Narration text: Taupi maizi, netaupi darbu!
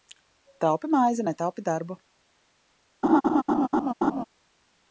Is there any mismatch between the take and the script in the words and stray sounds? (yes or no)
yes